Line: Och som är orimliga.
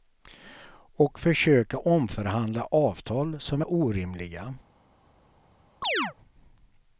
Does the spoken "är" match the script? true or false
true